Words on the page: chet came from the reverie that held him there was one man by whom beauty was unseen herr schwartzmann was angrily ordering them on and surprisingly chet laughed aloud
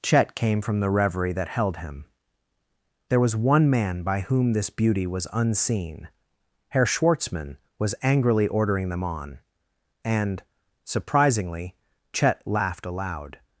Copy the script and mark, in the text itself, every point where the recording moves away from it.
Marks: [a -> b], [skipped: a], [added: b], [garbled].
chet came from the reverie that held him there was one man by whom [added: this] beauty was unseen herr schwartzmann was angrily ordering them on and surprisingly chet laughed aloud